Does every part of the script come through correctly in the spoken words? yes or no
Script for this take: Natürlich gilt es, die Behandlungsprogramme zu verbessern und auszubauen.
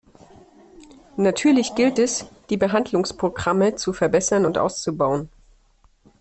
yes